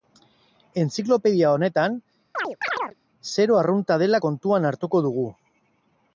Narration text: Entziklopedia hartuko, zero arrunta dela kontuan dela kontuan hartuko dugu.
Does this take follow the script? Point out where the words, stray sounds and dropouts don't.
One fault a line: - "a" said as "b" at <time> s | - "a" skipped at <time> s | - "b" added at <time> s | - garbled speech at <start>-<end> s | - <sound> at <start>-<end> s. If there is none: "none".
- "hartuko" said as "honetan" at 1.6 s
- chirp at 2.3-3.0 s
- "dela kontuan" skipped at 4.7 s